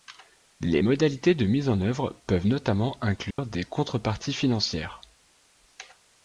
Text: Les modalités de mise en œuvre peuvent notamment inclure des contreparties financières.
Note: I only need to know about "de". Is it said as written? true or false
true